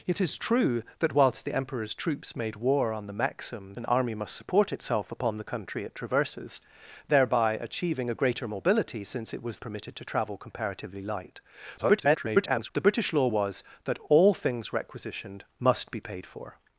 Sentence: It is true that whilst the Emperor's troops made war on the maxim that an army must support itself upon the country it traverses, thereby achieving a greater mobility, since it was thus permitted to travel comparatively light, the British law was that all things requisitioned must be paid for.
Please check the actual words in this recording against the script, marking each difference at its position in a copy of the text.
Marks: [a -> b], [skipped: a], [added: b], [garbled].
It is true that whilst the Emperor's troops made war on the maxim [skipped: that] an army must support itself upon the country it traverses, thereby achieving a greater mobility, since it was [skipped: thus] permitted to travel comparatively light, [garbled] the British law was that all things requisitioned must be paid for.